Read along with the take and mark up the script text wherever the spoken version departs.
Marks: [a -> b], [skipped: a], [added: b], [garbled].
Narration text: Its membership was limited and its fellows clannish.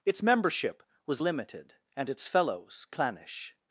Its membership was limited and its fellows clannish.